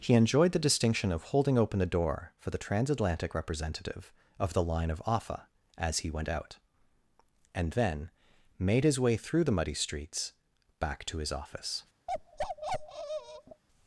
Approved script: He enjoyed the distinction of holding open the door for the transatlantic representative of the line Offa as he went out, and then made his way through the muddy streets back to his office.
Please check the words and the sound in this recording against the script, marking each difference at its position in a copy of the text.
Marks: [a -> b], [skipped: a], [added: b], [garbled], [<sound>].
He enjoyed the distinction of holding open the door for the transatlantic representative of the line [added: of] Offa as he went out, and then made his way through the muddy streets back to his office. [bark]